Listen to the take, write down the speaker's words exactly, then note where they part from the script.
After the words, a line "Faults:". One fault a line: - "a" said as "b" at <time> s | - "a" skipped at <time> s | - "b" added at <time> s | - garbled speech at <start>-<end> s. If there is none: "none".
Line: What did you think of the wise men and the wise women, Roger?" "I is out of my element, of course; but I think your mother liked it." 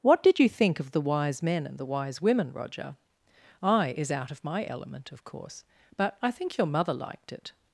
What did you think of the wise men and the wise women, Roger?" "I is out of my element, of course; but I think your mother liked it."
Faults:
none